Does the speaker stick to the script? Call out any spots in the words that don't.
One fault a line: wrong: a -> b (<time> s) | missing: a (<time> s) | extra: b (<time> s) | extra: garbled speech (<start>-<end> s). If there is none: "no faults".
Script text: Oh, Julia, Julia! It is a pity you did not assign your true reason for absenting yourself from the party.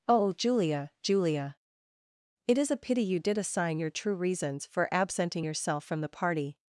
missing: not (3.4 s)
wrong: reason -> reasons (4.2 s)